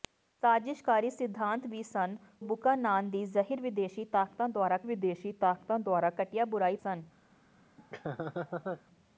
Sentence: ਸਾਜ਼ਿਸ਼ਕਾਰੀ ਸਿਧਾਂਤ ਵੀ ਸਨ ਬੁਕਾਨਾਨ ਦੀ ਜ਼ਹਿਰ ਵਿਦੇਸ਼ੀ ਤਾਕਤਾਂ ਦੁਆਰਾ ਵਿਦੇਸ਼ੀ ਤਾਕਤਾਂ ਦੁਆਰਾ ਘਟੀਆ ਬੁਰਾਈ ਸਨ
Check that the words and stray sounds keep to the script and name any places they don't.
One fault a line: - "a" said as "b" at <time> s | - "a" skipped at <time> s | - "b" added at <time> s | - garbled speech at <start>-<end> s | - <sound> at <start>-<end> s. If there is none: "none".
- laugh at 7.8-8.8 s